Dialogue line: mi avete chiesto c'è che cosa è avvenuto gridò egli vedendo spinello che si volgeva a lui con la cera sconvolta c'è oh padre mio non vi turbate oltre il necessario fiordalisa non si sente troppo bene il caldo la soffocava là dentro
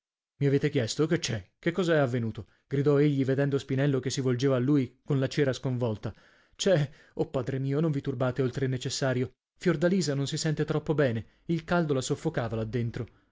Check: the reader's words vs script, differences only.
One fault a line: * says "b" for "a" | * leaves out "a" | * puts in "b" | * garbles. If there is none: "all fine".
* puts in "che"